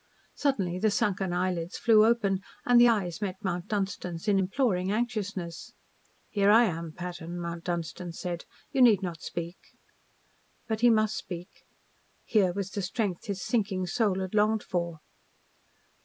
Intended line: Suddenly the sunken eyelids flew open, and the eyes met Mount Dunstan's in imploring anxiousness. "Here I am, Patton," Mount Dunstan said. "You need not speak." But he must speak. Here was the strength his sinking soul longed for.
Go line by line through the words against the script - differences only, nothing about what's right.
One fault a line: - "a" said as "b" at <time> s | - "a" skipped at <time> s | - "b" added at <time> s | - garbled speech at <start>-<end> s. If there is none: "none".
- "had" added at 14.2 s